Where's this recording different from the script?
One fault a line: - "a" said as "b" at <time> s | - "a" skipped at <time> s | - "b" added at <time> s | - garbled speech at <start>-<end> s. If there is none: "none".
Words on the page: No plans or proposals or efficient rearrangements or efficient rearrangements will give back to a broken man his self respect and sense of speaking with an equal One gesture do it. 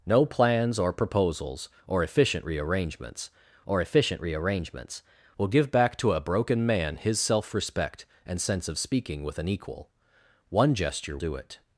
none